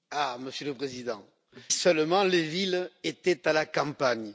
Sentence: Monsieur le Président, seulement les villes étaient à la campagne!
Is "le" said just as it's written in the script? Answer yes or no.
yes